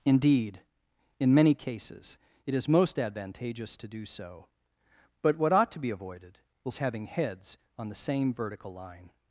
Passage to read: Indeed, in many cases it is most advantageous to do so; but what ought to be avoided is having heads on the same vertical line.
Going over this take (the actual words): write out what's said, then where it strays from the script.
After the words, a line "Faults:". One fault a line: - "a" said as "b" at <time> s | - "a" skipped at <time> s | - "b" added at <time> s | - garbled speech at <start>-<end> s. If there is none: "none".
Indeed, in many cases it is most advantageous to do so; but what ought to be avoided is having heads on the same vertical line.
Faults:
none